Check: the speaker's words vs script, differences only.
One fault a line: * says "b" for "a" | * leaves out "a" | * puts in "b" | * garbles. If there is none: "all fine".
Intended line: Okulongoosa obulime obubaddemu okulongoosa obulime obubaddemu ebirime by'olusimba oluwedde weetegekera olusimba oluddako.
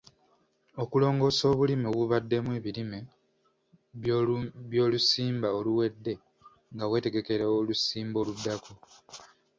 * leaves out "okulongoosa obulime obubaddemu"
* puts in "nga"